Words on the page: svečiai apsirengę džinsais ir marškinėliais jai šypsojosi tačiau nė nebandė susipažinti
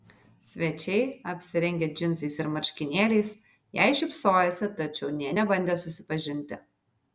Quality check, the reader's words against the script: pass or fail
pass